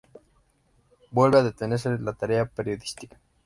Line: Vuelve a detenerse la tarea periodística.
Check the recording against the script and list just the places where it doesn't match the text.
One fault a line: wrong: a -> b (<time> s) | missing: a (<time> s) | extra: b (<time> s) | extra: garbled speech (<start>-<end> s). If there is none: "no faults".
no faults